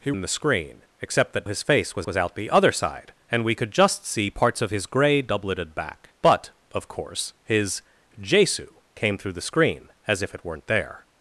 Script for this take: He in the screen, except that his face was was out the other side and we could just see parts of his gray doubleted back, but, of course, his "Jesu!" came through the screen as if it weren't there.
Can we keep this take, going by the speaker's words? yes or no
yes